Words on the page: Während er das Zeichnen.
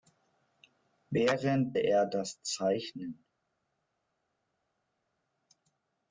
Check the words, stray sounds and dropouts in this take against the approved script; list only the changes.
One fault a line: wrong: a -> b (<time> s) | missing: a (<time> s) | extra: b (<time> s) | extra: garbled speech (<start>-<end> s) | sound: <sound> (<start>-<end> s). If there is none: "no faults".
no faults